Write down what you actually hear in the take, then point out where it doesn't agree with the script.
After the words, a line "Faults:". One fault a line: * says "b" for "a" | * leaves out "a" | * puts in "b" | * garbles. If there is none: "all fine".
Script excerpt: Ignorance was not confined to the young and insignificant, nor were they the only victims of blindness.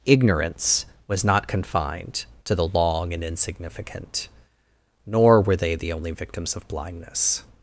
Ignorance was not confined to the long and insignificant, nor were they the only victims of blindness.
Faults:
* says "long" for "young"